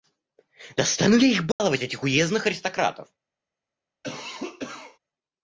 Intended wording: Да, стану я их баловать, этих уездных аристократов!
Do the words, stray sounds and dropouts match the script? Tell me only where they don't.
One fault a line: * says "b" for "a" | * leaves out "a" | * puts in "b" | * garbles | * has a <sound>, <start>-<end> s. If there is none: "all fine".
* has a dropout, 1.5-1.6 s
* has a cough, 4.0-5.0 s